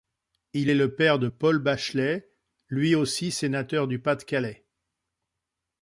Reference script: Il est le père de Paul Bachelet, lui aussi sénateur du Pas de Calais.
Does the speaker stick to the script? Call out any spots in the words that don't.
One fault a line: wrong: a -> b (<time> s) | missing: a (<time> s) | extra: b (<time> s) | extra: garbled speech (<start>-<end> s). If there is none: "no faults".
no faults